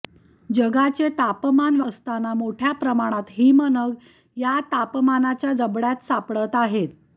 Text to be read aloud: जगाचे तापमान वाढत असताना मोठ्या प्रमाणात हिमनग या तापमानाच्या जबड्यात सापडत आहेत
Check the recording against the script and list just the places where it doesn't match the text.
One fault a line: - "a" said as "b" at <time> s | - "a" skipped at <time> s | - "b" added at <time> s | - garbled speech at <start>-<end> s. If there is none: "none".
- "वाढत" skipped at 1.8 s